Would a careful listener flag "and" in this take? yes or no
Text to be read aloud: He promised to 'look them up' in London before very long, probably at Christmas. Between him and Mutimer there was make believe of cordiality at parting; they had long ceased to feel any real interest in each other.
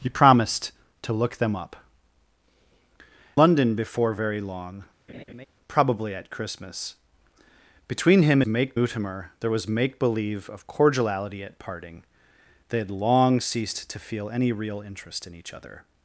yes